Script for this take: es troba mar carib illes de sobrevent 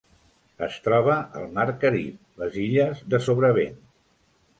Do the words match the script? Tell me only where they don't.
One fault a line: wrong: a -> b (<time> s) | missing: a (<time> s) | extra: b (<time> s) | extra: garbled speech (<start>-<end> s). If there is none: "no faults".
extra: al (1.4 s)
extra: les (2.4 s)